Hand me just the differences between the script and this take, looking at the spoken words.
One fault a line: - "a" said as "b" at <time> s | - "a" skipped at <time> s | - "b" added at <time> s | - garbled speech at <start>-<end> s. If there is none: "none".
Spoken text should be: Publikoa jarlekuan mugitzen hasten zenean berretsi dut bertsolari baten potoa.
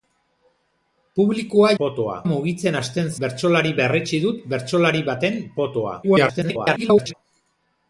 - "jarlekuan" said as "potoa" at 1.8 s
- "zenean" said as "bertsolari" at 3.3 s
- garbled speech at 6.0-7.1 s